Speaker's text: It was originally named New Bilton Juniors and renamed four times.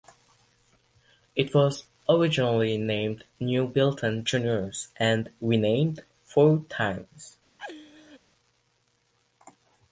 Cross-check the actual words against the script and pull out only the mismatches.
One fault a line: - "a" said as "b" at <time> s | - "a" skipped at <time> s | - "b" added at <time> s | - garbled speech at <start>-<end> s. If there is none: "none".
none